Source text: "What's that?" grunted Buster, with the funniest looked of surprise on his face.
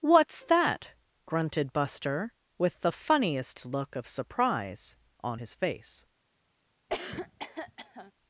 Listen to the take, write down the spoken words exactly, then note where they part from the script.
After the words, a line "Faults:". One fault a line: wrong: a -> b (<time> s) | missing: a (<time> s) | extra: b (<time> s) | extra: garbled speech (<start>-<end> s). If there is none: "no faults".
"What's that?" grunted Buster, with the funniest look of surprise on his face.
Faults:
wrong: looked -> look (3.6 s)